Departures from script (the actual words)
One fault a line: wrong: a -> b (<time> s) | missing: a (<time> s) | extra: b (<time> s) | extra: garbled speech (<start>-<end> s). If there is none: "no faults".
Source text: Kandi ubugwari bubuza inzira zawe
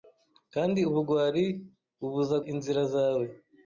no faults